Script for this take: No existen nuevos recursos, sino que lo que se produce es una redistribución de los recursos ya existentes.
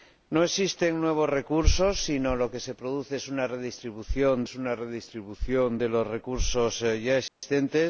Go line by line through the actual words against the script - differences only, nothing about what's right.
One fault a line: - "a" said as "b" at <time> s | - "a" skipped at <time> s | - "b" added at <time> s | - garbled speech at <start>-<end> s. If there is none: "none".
- "es una redistribución" added at 4.4 s